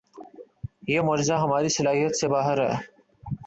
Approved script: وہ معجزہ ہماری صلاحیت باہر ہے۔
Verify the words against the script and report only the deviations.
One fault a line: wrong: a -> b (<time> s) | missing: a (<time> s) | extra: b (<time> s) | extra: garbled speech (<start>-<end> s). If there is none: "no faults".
wrong: وہ -> یہ (0.9 s)
extra: سے (2.2 s)